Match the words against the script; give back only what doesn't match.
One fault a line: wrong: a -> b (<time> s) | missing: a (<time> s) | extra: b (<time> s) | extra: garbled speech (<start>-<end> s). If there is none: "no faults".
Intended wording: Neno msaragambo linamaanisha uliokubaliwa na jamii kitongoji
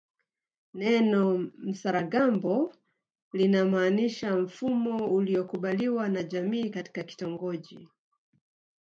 extra: mfumo (4.3 s)
extra: katika (6.7 s)